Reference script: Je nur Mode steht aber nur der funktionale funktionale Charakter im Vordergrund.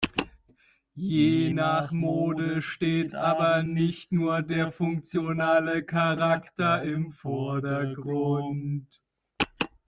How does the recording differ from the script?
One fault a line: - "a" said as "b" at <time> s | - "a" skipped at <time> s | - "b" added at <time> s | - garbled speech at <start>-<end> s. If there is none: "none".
- "nur" said as "nach" at 1.5 s
- "nicht" added at 3.6 s
- "funktionale" skipped at 5.8 s